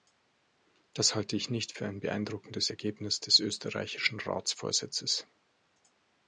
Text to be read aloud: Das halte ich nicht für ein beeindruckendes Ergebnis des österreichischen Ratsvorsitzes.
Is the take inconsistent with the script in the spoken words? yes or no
no